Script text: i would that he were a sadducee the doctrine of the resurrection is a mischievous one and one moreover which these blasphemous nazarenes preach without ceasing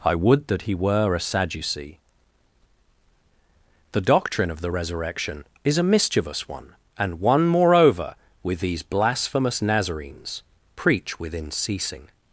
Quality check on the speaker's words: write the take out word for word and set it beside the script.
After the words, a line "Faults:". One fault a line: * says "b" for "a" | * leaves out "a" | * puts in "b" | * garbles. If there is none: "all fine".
i would that he were a sadducee the doctrine of the resurrection is a mischievous one and one moreover with these blasphemous nazarenes preach within ceasing
Faults:
* says "with" for "which"
* says "within" for "without"